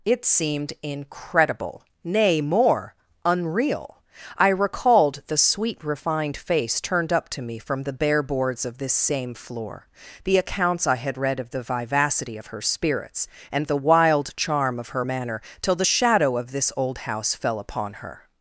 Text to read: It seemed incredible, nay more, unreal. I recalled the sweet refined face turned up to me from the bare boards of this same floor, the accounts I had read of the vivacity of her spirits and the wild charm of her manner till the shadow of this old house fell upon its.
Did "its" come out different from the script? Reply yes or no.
yes